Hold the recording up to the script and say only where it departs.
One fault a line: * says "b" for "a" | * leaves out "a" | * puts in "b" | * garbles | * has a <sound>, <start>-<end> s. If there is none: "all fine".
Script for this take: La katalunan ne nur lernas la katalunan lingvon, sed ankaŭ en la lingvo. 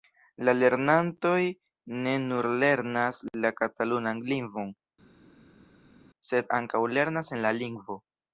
* says "lernantoj" for "katalunan"
* puts in "lernas"